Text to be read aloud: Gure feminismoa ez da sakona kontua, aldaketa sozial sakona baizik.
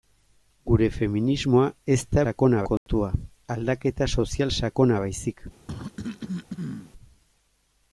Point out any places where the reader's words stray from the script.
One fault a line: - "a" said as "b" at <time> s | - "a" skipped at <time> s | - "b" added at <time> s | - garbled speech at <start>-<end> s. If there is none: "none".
none